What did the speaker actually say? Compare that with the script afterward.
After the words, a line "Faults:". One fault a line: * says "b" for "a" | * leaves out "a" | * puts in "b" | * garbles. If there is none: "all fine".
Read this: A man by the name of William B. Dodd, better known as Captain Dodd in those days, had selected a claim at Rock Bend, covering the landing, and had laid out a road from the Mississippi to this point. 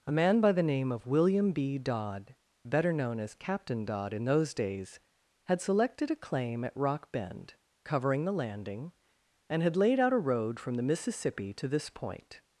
A man by the name of William B. Dodd, better known as Captain Dodd in those days, had selected a claim at Rock Bend, covering the landing, and had laid out a road from the Mississippi to this point.
Faults:
all fine